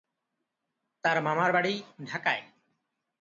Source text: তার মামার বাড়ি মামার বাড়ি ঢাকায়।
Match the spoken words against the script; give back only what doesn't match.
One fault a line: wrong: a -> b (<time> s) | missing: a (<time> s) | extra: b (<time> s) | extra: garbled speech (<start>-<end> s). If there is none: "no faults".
missing: মামার বাড়ি (1.7 s)